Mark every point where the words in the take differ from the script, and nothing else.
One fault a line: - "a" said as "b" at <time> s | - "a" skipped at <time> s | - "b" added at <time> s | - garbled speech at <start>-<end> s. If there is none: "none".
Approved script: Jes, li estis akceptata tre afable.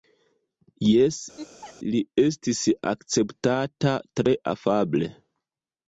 none